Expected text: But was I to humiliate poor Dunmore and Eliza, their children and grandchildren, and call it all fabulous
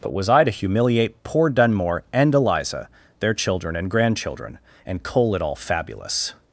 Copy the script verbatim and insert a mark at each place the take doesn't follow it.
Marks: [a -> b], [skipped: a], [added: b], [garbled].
But was I to humiliate poor Dunmore and Eliza, their children and grandchildren, and [call -> coal] it all fabulous